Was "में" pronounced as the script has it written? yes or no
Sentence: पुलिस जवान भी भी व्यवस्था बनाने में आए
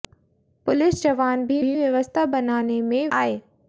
yes